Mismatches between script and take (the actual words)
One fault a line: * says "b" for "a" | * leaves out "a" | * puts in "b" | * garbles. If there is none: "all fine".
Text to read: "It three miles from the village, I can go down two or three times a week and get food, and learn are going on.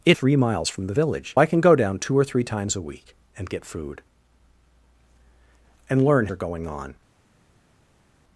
all fine